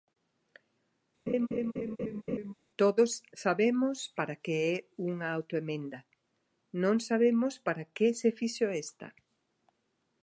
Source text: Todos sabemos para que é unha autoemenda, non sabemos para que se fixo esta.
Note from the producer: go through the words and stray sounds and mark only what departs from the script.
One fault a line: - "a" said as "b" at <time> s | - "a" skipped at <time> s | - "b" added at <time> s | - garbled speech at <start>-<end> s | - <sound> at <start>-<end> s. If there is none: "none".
- laugh at 1.3-2.5 s